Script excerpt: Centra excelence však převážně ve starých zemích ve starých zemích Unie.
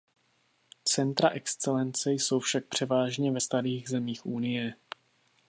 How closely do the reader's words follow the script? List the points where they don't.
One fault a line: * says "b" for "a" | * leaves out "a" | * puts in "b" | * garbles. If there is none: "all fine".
* puts in "jsou"
* leaves out "ve starých zemích"